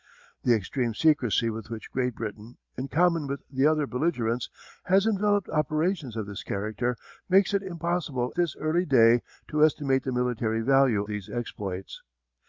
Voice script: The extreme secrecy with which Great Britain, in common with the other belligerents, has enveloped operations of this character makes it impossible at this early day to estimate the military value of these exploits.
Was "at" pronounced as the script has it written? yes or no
no